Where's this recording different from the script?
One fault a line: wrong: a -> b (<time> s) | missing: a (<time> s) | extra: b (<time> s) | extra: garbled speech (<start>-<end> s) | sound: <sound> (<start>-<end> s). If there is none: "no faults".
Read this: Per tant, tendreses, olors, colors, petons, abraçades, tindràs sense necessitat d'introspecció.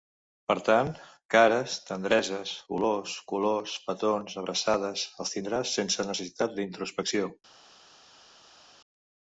extra: cares (1.4 s)
extra: els (5.3 s)